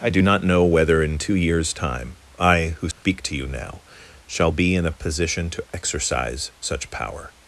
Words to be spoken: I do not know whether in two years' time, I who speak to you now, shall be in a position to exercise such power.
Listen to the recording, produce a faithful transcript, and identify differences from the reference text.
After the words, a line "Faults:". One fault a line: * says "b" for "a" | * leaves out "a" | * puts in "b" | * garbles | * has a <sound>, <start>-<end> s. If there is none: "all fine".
I do not know whether in two years' time, I who speak to you now, shall be in a position to exercise such power.
Faults:
* has a dropout, 2.9-3.0 s